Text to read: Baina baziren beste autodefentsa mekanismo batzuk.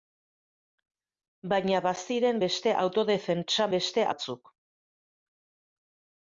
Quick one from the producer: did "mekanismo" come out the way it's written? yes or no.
no